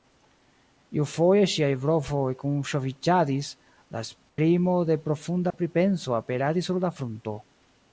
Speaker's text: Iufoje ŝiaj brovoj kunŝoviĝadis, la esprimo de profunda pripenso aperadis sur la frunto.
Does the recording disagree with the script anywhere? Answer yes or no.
no